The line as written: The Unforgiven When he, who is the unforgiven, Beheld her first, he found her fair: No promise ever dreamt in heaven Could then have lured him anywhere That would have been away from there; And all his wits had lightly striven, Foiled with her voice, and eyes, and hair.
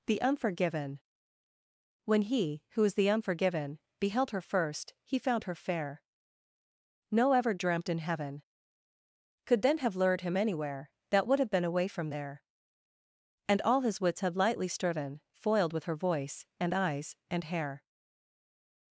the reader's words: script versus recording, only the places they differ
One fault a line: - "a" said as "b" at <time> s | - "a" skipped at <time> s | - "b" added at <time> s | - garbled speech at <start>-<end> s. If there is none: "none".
- "promise" skipped at 7.3 s